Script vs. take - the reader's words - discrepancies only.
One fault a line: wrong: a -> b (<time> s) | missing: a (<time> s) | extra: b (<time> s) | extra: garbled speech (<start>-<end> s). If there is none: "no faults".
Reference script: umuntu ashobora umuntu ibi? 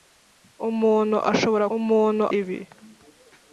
no faults